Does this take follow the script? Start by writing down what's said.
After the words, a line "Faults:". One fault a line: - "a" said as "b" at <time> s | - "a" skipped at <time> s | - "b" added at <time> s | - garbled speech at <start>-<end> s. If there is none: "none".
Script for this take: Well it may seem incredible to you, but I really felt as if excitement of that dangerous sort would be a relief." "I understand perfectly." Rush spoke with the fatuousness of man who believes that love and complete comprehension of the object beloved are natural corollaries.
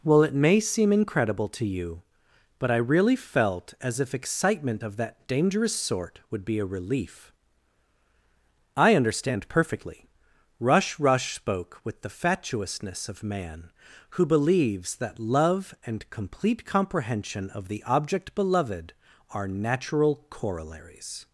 Well it may seem incredible to you, but I really felt as if excitement of that dangerous sort would be a relief." "I understand perfectly." Rush Rush spoke with the fatuousness of man who believes that love and complete comprehension of the object beloved are natural corollaries.
Faults:
- "Rush" added at 11.0 s